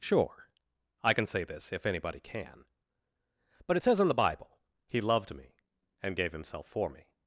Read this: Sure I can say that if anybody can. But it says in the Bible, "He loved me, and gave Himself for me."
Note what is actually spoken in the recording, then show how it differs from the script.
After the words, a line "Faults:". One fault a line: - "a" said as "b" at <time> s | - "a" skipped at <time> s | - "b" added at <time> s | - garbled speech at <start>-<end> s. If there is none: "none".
Sure I can say this if anybody can. But it says in the Bible, "He loved me, and gave Himself for me."
Faults:
- "that" said as "this" at 1.4 s